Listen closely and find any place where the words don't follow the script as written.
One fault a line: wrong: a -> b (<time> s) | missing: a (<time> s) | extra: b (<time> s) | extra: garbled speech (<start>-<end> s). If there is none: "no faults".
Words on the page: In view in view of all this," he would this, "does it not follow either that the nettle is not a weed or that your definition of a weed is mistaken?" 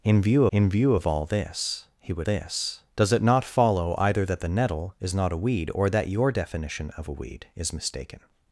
no faults